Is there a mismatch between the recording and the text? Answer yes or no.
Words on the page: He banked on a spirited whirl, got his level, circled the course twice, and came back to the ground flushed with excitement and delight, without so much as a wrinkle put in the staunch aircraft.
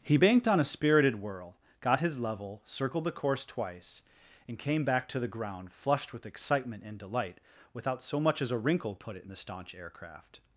yes